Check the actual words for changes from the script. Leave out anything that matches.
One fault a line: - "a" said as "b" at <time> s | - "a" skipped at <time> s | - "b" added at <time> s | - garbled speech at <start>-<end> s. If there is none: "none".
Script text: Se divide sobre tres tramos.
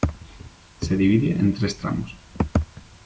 - "sobre" said as "en" at 1.3 s